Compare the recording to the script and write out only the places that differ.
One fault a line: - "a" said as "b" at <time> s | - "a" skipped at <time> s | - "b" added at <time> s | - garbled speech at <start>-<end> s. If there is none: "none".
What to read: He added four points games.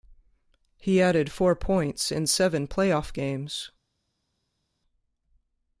- "in seven playoff" added at 2.1 s